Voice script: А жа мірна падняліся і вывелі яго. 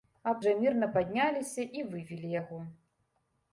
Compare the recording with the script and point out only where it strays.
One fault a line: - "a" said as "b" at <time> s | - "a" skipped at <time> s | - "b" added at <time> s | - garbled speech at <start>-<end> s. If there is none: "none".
none